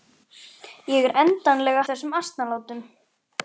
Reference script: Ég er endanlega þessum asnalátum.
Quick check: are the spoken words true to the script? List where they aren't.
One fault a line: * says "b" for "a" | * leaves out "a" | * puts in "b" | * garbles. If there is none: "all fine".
all fine